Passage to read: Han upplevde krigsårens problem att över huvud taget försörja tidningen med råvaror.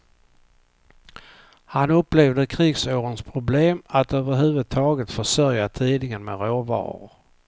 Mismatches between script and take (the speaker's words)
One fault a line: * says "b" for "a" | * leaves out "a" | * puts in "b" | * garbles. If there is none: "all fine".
all fine